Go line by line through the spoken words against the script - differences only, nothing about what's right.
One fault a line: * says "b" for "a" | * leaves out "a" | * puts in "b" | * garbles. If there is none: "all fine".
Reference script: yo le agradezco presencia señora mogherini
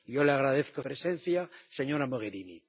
all fine